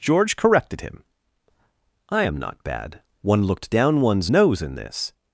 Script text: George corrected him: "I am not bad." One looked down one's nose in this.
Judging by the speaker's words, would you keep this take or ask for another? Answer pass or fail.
pass